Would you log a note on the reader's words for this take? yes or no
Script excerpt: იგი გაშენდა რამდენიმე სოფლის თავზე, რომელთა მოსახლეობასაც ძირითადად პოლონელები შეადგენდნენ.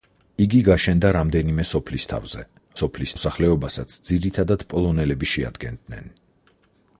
yes